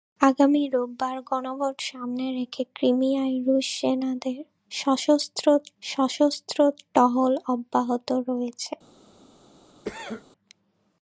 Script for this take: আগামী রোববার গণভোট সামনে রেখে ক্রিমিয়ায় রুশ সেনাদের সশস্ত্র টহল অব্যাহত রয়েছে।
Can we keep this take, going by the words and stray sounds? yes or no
no